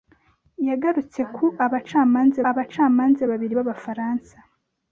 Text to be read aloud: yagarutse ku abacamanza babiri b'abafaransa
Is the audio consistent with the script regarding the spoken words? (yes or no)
no